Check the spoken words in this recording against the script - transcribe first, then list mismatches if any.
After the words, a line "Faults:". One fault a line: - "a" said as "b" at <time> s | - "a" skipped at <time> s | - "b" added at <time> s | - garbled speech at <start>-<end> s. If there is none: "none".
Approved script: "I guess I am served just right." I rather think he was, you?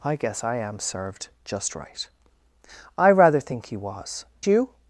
"I guess I am served just right." I rather think he was, you?
Faults:
none